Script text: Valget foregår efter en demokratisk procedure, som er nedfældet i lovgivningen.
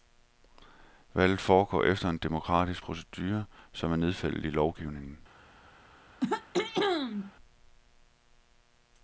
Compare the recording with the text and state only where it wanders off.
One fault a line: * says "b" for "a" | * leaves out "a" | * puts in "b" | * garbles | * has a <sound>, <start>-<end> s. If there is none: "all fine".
* has a throat clearing, 6.2-7.3 s